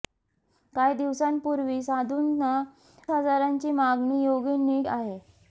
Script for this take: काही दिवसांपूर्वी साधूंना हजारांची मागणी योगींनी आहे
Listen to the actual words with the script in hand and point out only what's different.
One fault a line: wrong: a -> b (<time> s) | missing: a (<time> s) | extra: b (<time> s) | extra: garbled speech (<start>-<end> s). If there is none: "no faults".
no faults